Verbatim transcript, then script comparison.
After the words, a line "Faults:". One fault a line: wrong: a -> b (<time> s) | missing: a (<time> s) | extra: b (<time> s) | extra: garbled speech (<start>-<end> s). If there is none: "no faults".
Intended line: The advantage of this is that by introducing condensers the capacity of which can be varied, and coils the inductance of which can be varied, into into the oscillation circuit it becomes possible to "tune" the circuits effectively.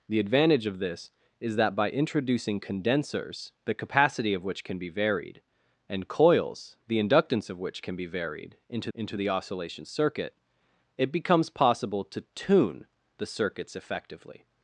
The advantage of this is that by introducing condensers the capacity of which can be varied, and coils the inductance of which can be varied, into into the oscillation circuit it becomes possible to "tune" the circuits effectively.
Faults:
no faults